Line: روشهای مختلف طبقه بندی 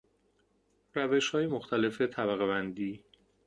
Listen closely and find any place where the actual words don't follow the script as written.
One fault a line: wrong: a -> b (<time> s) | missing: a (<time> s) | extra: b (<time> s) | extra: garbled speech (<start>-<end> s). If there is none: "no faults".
no faults